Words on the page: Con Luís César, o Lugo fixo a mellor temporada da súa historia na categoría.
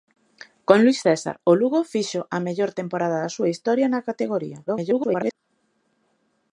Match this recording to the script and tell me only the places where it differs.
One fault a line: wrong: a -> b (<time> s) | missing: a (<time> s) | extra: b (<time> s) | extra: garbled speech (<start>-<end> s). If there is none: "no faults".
extra: garbled speech (4.7-5.4 s)